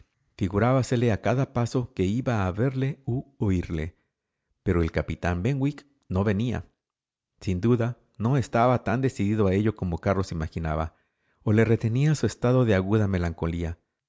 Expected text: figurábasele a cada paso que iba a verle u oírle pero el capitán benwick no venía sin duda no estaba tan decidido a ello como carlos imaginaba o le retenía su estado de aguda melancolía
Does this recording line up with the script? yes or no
yes